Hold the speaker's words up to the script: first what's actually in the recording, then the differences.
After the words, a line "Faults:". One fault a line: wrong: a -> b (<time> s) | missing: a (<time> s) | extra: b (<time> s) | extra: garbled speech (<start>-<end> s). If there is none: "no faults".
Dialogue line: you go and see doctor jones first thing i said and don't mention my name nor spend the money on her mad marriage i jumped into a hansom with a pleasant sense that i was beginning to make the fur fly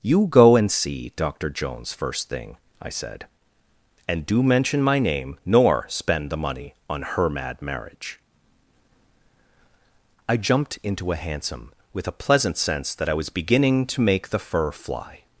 you go and see doctor jones first thing i said and do mention my name nor spend the money on her mad marriage i jumped into a hansom with a pleasant sense that i was beginning to make the fur fly
Faults:
wrong: don't -> do (4.2 s)